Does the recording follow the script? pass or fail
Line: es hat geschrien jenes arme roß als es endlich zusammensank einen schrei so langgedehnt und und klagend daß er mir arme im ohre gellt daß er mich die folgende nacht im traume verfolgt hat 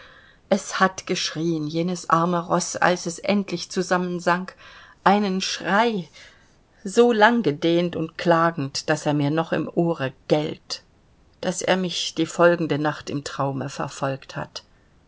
fail